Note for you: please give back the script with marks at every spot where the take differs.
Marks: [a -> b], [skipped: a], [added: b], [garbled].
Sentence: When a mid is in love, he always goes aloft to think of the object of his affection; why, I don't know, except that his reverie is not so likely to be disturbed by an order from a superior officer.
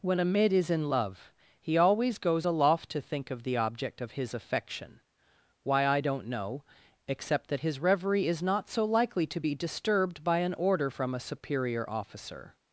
When a mid is in love, he always goes aloft to think of the object of his affection; why, I don't know, except that his reverie is not so likely to be disturbed by an order from a superior officer.